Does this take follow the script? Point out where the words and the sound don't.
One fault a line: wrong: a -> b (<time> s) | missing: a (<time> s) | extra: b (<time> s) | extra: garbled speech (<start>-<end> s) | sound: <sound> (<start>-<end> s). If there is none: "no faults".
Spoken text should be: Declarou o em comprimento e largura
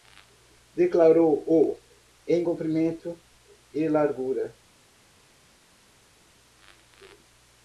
no faults